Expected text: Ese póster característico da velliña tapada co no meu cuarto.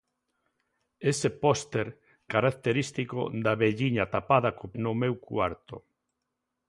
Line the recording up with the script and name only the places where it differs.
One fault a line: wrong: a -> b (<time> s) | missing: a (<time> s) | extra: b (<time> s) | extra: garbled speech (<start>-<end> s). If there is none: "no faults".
no faults